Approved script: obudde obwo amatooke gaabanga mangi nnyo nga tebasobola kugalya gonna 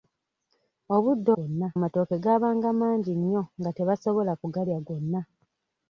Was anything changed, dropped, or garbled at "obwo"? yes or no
yes